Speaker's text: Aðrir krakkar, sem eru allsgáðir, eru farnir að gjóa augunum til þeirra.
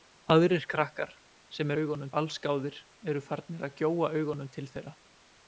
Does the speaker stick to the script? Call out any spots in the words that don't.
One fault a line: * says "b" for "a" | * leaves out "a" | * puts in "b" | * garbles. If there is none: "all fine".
* says "augunum" for "eru"